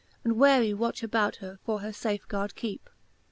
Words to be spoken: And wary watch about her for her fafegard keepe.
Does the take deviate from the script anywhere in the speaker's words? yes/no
no